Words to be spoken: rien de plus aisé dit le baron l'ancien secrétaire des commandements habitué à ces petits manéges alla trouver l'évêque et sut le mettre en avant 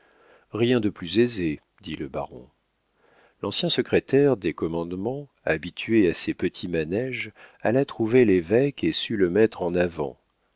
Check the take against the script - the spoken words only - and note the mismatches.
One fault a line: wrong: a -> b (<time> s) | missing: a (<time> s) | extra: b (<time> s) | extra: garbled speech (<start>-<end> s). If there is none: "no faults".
no faults